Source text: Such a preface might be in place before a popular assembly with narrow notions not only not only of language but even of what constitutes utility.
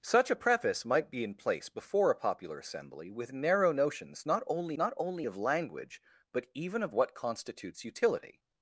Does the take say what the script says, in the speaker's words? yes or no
yes